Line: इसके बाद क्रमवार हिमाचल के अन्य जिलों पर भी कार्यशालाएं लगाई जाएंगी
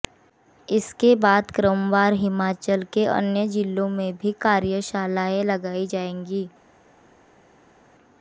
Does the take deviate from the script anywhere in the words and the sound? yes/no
yes